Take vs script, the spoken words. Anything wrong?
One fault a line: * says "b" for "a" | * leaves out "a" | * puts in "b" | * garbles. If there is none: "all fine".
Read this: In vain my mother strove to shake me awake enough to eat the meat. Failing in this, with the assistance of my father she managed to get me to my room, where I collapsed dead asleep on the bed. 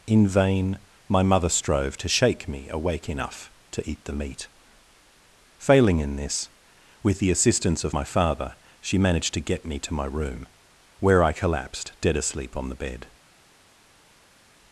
all fine